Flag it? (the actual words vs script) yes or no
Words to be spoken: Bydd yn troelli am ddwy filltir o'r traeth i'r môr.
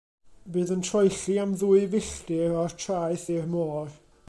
no